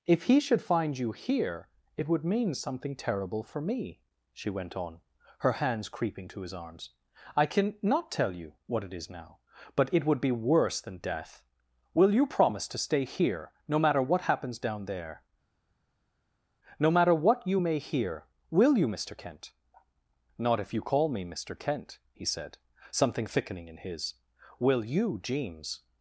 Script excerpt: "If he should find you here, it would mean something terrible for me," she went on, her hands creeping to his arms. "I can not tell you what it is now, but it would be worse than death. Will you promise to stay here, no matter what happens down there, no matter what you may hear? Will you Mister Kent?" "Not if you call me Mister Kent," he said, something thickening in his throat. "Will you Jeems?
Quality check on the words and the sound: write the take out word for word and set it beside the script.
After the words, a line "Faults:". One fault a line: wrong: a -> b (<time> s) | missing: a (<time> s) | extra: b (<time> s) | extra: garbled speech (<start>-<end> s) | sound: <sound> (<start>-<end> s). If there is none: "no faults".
"If he should find you here, it would mean something terrible for me," she went on, her hands creeping to his arms. "I can not tell you what it is now, but it would be worse than death. Will you promise to stay here, no matter what happens down there, no matter what you may hear? Will you Mister Kent?" "Not if you call me Mister Kent," he said, something thickening in his. "Will you Jeems?
Faults:
missing: throat (24.1 s)